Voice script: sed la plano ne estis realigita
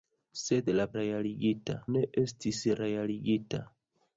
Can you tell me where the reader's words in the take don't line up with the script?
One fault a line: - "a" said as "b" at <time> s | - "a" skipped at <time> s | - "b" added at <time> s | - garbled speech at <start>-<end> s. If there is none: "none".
- "plano" said as "realigita" at 1.0 s